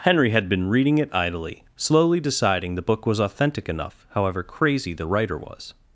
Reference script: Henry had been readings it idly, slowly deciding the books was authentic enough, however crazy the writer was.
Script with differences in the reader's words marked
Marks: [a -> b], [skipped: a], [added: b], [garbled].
Henry had been [readings -> reading] it idly, slowly deciding the [books -> book] was authentic enough, however crazy the writer was.